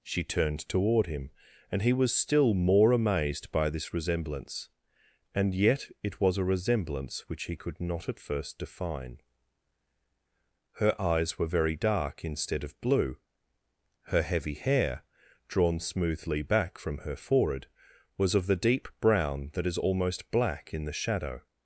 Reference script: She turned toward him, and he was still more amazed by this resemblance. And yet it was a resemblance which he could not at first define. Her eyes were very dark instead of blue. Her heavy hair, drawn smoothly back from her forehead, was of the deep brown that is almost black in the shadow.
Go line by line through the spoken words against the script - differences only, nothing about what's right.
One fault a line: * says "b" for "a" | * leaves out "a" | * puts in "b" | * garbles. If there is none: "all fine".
all fine